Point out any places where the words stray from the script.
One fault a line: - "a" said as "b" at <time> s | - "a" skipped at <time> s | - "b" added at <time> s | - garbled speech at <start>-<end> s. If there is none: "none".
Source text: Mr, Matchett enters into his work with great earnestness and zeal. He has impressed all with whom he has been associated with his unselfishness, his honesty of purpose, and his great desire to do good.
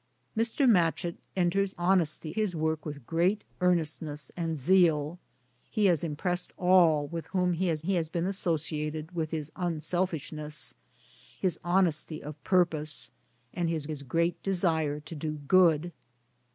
- "into" said as "honesty" at 1.8 s
- "he has" added at 7.8 s
- "his" added at 13.9 s